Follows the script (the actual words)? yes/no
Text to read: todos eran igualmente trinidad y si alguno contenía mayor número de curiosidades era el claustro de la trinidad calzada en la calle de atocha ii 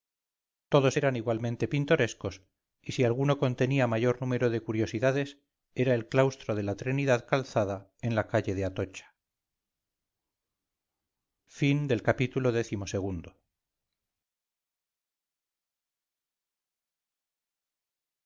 no